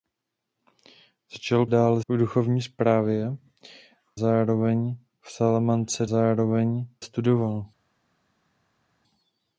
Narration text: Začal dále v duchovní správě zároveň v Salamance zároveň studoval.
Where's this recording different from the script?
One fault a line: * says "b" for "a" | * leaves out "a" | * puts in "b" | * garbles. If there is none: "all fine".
all fine